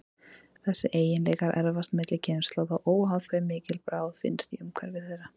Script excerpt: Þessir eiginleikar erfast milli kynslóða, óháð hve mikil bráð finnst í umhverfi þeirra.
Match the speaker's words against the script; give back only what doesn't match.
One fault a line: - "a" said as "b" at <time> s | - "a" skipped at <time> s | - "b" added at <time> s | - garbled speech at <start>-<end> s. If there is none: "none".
none